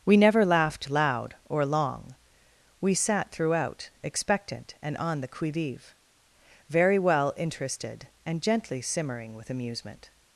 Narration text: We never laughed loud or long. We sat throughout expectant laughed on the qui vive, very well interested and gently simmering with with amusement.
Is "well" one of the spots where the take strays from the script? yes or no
no